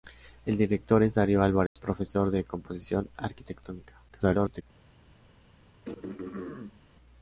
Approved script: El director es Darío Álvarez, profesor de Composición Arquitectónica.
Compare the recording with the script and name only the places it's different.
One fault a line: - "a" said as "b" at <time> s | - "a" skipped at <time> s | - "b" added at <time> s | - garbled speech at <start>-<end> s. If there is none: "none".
- garbled speech at 4.1-4.6 s